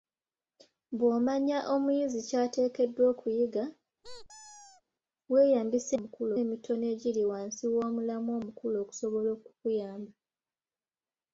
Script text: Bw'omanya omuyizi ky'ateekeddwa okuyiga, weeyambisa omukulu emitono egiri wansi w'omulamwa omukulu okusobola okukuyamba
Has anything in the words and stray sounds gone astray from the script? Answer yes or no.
yes